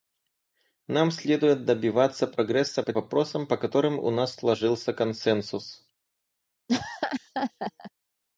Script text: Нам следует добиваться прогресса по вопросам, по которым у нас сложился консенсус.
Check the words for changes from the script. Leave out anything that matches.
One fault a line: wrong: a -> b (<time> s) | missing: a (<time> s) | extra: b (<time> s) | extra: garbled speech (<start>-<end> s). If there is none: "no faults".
no faults